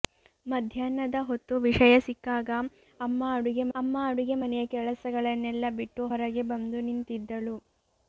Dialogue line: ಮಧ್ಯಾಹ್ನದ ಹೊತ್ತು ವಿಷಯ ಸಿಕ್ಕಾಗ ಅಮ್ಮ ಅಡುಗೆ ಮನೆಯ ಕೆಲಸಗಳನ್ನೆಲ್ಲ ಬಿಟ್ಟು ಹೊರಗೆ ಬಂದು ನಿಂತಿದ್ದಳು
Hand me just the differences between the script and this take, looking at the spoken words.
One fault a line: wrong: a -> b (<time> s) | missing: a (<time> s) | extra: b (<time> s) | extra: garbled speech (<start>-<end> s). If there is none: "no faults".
extra: ಅಮ್ಮ ಅಡುಗೆ (3.7 s)